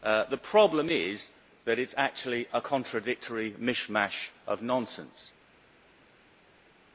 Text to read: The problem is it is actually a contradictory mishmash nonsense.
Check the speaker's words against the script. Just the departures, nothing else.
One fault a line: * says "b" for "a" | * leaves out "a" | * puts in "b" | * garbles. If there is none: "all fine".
* puts in "that"
* puts in "of"